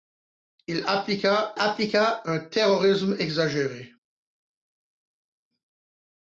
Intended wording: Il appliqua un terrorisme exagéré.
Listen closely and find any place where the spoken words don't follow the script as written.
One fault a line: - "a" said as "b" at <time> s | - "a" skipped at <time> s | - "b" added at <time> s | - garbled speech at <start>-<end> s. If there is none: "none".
- "appliqua" added at 1.6 s